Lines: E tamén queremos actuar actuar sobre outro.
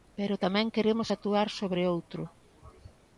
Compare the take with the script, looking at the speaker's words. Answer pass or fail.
fail